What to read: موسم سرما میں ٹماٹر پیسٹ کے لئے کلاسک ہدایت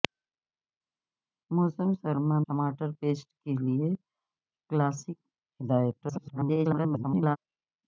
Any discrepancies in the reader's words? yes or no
yes